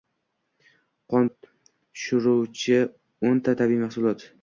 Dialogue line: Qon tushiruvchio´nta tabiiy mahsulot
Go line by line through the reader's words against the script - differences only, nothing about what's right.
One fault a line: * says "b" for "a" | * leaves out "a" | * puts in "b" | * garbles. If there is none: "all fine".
all fine